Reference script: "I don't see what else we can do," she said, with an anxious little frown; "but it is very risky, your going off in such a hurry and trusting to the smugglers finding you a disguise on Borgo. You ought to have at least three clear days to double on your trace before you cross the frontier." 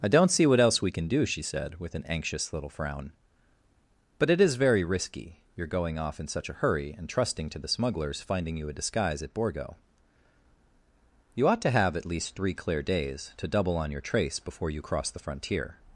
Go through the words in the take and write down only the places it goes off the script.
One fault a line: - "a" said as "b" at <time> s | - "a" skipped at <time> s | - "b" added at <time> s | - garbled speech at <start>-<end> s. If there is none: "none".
- "on" said as "at" at 9.2 s